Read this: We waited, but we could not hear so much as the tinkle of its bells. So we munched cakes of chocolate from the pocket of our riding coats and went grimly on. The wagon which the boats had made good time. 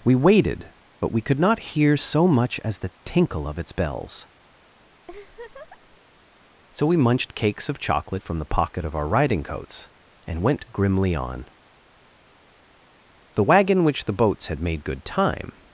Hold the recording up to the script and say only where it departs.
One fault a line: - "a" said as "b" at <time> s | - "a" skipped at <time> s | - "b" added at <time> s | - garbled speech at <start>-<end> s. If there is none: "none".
none